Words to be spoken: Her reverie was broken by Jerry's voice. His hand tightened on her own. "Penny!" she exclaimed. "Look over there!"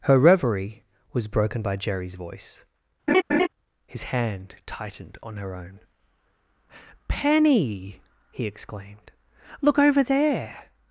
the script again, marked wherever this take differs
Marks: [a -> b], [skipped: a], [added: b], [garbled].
Her reverie was broken by Jerry's voice. His hand tightened on her own. "Penny!" [she -> he] exclaimed. "Look over there!"